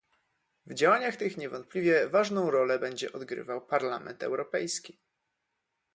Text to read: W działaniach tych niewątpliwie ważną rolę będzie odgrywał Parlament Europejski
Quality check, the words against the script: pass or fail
pass